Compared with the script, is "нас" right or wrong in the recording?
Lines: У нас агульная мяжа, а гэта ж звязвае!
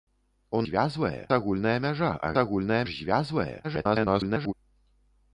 wrong